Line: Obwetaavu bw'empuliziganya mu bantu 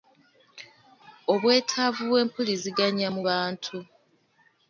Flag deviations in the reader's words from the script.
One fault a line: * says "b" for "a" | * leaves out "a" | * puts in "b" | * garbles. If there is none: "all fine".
all fine